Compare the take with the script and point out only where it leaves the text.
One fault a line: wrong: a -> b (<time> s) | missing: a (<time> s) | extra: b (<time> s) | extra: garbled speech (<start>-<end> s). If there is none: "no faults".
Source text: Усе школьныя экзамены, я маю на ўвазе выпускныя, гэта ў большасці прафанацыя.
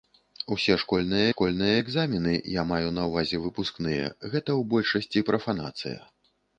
extra: школьныя (1.3 s)